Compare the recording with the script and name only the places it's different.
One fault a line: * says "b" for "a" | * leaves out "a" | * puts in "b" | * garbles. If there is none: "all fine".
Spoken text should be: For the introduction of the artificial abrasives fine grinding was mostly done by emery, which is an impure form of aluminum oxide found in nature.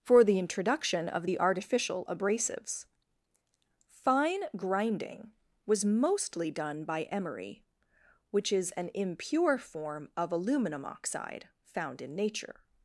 all fine